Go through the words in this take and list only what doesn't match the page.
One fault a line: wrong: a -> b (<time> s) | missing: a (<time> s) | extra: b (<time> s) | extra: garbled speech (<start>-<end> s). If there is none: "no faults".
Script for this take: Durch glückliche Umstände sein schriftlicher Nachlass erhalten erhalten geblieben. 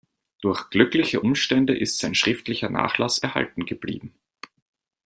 extra: ist (1.8 s)
missing: erhalten (3.6 s)